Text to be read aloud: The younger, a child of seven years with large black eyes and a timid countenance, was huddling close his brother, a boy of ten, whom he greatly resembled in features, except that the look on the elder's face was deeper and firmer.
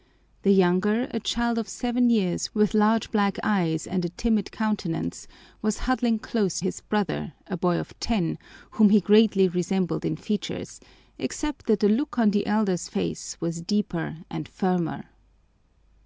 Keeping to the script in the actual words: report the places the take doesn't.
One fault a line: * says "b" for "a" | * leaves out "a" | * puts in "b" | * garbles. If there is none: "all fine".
all fine